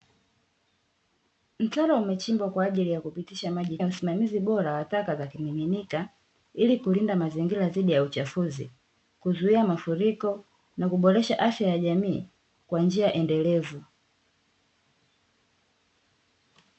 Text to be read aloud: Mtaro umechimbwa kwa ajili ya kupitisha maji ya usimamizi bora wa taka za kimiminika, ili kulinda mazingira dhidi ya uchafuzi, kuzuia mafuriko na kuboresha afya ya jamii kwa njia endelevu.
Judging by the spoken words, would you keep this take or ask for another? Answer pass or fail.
pass